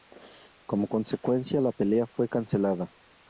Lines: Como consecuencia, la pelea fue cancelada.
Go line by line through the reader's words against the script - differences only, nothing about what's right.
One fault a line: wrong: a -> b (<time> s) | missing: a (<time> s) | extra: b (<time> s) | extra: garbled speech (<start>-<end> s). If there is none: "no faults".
no faults